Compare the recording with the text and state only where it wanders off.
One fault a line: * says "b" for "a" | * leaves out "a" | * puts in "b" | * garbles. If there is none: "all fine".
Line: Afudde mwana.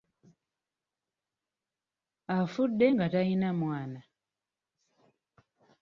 * puts in "nga talina"